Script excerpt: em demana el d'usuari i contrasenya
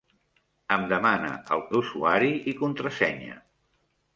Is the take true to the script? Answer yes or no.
yes